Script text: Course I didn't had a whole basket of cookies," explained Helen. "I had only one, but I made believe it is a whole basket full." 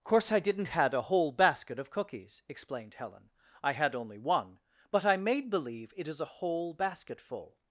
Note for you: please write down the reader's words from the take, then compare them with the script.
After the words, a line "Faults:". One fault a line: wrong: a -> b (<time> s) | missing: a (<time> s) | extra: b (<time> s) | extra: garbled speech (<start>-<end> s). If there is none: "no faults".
Course I didn't had a whole basket of cookies," explained Helen. "I had only one, but I made believe it is a whole basket full."
Faults:
no faults